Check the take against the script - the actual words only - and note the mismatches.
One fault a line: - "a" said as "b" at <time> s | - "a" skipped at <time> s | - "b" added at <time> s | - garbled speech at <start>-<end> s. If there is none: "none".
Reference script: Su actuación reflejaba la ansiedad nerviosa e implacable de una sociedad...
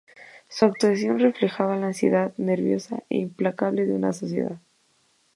none